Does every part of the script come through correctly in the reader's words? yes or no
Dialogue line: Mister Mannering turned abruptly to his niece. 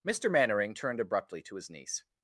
yes